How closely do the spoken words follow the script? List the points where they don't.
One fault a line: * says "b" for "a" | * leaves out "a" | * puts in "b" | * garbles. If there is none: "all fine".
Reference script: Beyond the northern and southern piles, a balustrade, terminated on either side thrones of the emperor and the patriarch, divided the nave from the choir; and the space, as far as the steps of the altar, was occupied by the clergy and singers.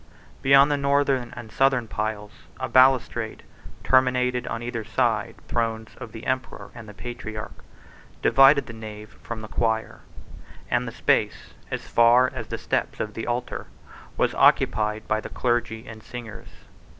all fine